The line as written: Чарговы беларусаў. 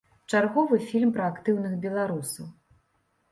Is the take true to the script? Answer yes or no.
no